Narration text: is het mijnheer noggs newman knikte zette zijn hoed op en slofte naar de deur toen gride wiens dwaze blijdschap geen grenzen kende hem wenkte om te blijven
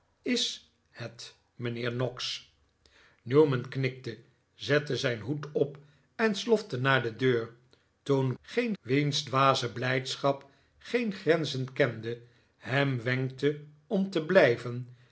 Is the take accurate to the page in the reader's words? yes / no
no